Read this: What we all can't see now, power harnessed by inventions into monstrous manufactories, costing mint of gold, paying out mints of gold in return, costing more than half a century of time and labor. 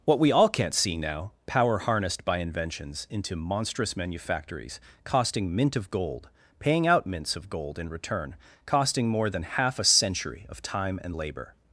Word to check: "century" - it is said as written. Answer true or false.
true